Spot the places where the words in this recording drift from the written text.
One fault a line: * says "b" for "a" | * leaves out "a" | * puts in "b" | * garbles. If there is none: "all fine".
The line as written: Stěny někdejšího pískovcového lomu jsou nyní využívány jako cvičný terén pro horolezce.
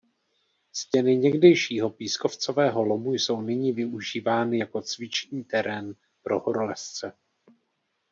all fine